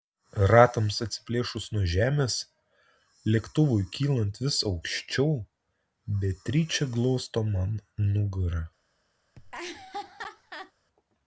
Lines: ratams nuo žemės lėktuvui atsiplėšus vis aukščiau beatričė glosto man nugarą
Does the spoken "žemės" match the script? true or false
true